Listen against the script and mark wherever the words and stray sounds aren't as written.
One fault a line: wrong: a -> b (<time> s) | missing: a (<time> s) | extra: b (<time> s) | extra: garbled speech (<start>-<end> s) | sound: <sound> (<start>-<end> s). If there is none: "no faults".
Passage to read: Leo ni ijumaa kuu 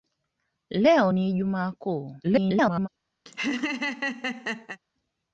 extra: garbled speech (2.2-2.9 s)
sound: laugh (3.3-4.8 s)